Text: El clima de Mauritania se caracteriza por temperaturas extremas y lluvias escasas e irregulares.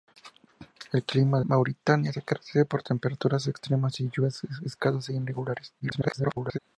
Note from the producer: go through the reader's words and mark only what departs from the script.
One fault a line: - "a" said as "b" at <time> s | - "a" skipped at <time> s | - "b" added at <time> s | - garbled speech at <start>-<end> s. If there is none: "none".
- "de" skipped at 1.4 s
- garbled speech at 5.8-6.6 s